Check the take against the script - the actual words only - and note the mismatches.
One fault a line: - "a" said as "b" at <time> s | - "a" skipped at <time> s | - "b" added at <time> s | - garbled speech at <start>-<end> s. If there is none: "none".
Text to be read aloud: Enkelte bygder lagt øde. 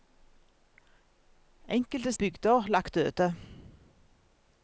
none